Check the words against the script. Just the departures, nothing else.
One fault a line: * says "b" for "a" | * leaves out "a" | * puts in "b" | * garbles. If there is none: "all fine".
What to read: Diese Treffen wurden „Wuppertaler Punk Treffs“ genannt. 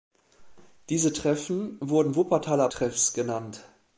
* leaves out "Punk"